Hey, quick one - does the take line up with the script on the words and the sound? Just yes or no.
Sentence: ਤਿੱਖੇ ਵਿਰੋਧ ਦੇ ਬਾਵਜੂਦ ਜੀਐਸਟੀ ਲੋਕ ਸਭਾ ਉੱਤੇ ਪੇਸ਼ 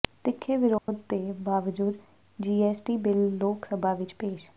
no